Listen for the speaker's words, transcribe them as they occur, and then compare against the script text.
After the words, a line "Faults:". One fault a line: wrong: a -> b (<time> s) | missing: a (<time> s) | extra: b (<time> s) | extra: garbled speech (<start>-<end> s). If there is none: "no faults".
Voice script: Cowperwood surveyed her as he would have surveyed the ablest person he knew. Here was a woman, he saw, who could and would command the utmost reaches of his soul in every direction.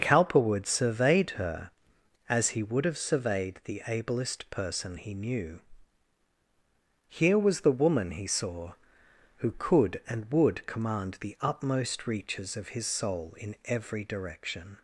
Cowperwood surveyed her as he would have surveyed the ablest person he knew. Here was the woman, he saw, who could and would command the utmost reaches of his soul in every direction.
Faults:
wrong: a -> the (7.6 s)